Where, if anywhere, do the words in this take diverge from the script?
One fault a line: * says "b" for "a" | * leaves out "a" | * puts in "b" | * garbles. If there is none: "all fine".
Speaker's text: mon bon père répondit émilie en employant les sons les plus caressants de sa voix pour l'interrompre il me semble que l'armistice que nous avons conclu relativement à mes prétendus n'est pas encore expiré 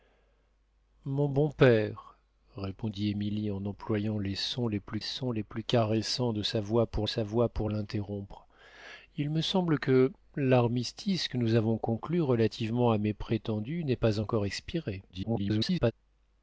* puts in "sons les plus"
* puts in "sa voix pour"
* garbles